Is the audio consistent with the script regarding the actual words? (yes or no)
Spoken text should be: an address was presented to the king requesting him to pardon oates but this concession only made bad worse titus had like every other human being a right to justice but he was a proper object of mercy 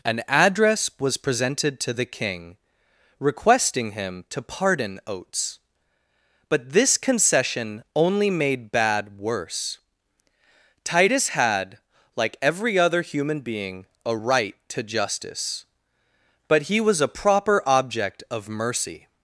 yes